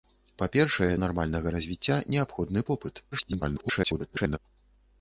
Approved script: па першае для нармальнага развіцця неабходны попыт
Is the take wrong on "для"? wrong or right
wrong